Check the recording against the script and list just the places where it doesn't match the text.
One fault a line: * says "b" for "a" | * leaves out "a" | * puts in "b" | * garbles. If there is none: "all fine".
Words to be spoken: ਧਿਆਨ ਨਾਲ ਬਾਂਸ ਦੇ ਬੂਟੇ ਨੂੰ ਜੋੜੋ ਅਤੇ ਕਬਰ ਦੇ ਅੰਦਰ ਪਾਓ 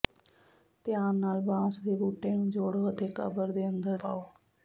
all fine